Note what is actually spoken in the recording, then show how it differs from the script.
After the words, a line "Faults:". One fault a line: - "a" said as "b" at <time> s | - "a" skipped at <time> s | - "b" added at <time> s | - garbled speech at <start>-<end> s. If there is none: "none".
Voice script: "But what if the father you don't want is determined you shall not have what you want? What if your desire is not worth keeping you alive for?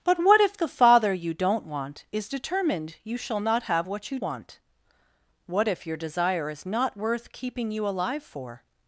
"But what if the father you don't want is determined you shall not have what you want? What if your desire is not worth keeping you alive for?
Faults:
none